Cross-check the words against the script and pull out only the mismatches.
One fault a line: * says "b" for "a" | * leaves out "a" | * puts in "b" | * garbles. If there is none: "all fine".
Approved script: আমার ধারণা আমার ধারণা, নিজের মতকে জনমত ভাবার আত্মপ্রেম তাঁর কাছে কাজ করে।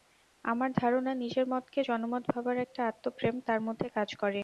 * leaves out "আমার ধারণা"
* puts in "একটা"
* says "মধ্যে" for "কাছে"